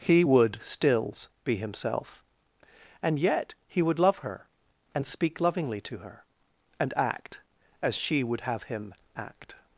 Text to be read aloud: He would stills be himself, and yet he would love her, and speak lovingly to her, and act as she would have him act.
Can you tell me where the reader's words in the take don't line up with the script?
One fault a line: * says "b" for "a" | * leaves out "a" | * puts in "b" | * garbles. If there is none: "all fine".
all fine